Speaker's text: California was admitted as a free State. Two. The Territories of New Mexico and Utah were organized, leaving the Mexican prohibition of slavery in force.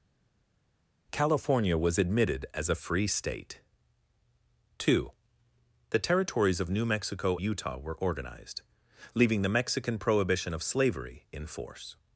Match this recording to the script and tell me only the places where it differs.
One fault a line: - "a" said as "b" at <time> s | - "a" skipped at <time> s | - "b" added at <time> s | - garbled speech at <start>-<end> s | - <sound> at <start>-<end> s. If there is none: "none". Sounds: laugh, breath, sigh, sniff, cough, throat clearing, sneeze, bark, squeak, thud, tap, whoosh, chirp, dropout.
- "and" skipped at 7.4 s